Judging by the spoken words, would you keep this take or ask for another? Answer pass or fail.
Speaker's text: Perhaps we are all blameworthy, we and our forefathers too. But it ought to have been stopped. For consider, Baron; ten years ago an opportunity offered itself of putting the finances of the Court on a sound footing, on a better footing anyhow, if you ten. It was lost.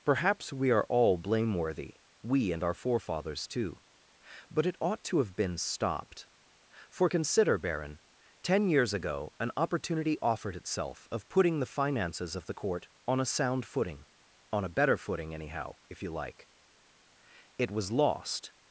fail